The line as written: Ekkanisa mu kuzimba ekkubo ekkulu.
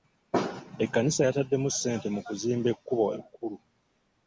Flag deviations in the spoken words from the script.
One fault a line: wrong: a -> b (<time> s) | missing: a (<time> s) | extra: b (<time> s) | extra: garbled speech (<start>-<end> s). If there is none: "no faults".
extra: yataddemu ssente (1.3 s)